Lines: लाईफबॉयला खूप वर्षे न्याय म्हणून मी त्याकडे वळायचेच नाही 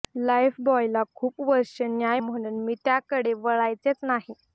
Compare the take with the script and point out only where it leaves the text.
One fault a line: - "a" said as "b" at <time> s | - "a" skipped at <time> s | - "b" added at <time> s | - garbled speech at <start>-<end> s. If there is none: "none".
none